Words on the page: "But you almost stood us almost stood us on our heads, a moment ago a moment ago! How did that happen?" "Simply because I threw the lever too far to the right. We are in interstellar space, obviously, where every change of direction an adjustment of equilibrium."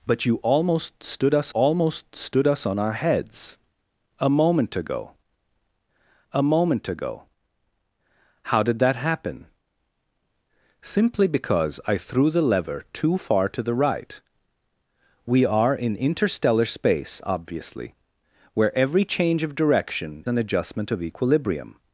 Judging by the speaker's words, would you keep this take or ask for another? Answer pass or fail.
pass